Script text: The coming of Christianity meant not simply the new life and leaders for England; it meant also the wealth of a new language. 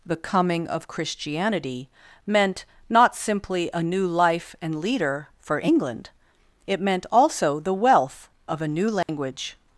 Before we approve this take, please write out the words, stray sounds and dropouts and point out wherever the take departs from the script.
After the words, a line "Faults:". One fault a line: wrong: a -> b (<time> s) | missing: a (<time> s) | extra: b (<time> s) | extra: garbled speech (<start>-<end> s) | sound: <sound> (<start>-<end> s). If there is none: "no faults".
The coming of Christianity meant not simply a new life and leader for England; it meant also the wealth of a new language.
Faults:
wrong: the -> a (3.7 s)
wrong: leaders -> leader (4.8 s)
sound: dropout (9.0-9.1 s)